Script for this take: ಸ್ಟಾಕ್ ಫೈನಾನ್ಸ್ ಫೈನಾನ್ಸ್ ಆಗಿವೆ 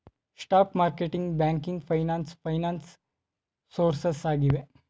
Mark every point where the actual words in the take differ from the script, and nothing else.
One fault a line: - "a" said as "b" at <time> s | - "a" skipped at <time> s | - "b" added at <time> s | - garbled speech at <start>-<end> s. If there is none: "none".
- "ಮಾರ್ಕೆಟಿಂಗ್ ಬ್ಯಾಂಕಿಂಗ್" added at 0.8 s
- "ಸೋರ್ಸಸ್" added at 3.7 s